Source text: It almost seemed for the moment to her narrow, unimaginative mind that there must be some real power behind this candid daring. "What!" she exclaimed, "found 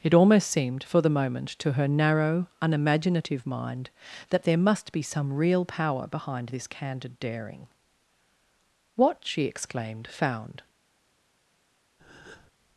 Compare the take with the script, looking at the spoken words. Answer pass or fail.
pass